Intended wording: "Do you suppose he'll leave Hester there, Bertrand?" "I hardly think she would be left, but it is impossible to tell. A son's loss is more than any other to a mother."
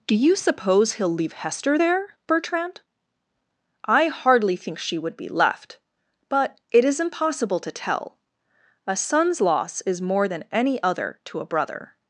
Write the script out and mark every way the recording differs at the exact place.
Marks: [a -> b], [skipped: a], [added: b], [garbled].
"Do you suppose he'll leave Hester there, Bertrand?" "I hardly think she would be left, but it is impossible to tell. A son's loss is more than any other to a [mother." -> brother]